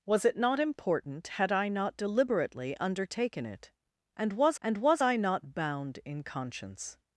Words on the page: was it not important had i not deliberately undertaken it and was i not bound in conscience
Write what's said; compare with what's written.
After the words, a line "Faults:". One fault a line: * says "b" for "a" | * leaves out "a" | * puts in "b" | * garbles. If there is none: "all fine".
was it not important had i not deliberately undertaken it and was and was i not bound in conscience
Faults:
* puts in "and was"